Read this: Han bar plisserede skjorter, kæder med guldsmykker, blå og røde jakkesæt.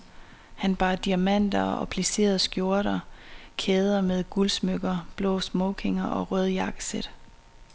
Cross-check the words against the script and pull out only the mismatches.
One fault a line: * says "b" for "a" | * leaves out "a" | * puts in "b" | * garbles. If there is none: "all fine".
* puts in "diamanter og"
* puts in "smokinger"